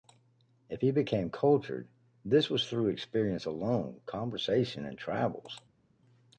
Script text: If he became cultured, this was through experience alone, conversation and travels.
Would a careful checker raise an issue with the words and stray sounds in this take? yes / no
no